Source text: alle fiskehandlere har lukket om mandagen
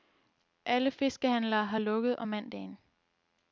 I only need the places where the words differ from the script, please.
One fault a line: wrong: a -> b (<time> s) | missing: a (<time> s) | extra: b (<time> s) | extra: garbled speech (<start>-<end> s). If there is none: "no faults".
no faults